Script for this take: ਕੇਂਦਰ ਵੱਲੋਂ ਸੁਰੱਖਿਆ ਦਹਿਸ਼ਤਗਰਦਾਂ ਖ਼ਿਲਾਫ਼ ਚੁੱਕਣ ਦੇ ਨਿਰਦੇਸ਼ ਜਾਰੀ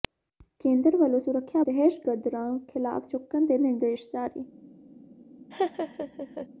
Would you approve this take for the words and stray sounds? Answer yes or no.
no